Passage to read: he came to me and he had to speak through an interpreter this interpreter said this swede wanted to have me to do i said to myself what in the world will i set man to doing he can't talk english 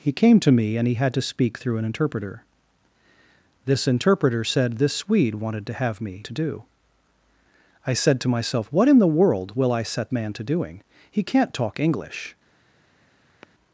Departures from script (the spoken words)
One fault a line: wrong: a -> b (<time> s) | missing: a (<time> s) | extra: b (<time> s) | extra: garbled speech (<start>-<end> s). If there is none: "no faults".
no faults